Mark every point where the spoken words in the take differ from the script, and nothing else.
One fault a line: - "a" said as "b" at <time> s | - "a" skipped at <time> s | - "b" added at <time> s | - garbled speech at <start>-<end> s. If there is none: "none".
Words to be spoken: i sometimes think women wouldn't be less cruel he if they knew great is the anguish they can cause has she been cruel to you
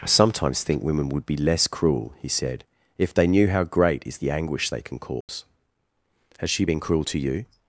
- "wouldn't" said as "would" at 1.1 s
- "said" added at 2.3 s
- "how" added at 3.5 s